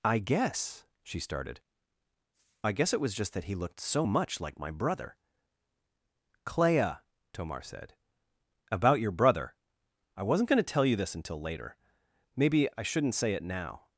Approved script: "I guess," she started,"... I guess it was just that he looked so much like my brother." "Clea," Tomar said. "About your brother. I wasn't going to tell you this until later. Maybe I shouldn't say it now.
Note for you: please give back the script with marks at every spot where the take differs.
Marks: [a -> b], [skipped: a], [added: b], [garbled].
"I guess," she started,"... I guess it was just that he looked so much like my brother." "Clea," Tomar said. "About your brother. I wasn't going to tell you this until later. Maybe I shouldn't say it now.